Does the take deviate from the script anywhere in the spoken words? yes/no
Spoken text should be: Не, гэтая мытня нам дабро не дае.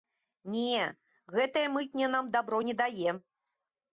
no